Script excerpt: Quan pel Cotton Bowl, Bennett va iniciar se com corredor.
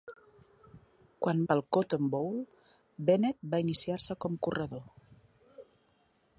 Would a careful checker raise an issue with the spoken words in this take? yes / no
no